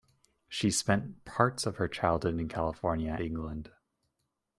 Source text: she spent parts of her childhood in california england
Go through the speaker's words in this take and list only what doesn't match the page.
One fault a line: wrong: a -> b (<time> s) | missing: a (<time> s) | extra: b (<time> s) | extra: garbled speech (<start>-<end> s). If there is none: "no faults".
no faults